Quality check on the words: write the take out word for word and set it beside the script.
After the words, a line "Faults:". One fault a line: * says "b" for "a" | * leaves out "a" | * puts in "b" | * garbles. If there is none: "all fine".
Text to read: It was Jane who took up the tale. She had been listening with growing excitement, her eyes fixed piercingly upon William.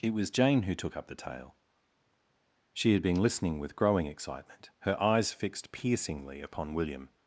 It was Jane who took up the tale. She had been listening with growing excitement, her eyes fixed piercingly upon William.
Faults:
all fine